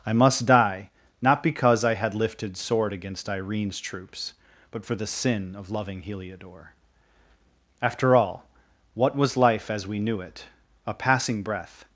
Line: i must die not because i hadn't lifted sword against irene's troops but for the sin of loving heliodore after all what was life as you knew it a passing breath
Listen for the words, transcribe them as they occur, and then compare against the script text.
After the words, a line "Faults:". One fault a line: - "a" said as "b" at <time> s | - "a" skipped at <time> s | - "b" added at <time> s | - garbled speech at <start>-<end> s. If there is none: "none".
i must die not because i had lifted sword against irene's troops but for the sin of loving heliodore after all what was life as we knew it a passing breath
Faults:
- "hadn't" said as "had" at 1.9 s
- "you" said as "we" at 9.9 s